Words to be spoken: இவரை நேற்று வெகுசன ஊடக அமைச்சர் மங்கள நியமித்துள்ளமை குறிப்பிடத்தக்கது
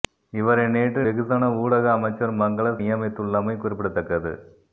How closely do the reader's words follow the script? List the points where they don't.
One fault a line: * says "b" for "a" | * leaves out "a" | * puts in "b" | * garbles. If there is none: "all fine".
all fine